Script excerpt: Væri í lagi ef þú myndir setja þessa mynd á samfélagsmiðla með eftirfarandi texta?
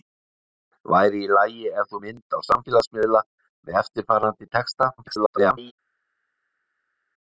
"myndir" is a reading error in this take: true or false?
true